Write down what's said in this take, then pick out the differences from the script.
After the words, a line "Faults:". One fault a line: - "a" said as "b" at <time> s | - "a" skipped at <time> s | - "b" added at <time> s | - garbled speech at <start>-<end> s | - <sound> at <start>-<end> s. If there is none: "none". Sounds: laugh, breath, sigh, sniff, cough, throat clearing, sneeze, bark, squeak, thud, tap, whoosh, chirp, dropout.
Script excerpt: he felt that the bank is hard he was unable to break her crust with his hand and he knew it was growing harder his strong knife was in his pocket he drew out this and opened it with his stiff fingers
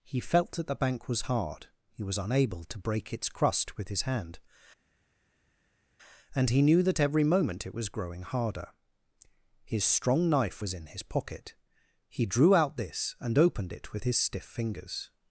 he felt that the bank was hard he was unable to break its crust with his hand and he knew that every moment it was growing harder his strong knife was in his pocket he drew out this and opened it with his stiff fingers
Faults:
- "is" said as "was" at 1.1 s
- "her" said as "its" at 3.1 s
- "that every moment" added at 6.8 s